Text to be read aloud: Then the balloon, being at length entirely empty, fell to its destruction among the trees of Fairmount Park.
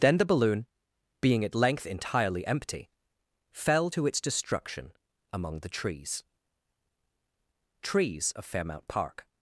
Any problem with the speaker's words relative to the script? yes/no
yes